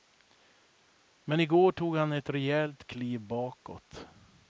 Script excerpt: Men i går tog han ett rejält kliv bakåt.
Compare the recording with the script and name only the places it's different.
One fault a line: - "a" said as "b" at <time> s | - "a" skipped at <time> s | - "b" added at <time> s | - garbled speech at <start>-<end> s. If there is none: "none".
none